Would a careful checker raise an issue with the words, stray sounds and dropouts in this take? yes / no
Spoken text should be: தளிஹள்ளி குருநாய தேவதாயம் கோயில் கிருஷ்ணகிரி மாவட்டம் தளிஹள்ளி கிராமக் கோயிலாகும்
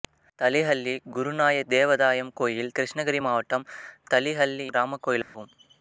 yes